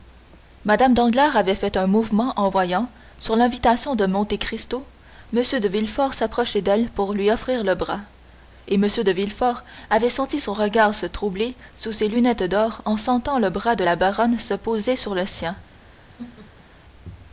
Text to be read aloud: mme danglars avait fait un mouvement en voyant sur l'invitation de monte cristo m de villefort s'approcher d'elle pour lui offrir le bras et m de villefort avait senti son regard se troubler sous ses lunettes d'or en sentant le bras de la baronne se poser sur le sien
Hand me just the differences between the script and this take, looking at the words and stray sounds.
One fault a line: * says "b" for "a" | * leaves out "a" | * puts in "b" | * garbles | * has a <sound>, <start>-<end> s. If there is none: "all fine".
* has a laugh, 16.2-16.7 s